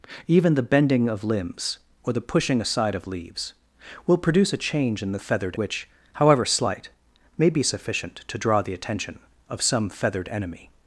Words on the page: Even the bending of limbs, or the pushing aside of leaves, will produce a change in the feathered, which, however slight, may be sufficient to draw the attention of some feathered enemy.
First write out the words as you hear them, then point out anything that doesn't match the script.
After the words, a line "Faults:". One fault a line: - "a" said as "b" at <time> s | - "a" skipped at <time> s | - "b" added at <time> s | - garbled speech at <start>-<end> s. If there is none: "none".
Even the bending of limbs, or the pushing aside of leaves, will produce a change in the feathered, which, however slight, may be sufficient to draw the attention of some feathered enemy.
Faults:
none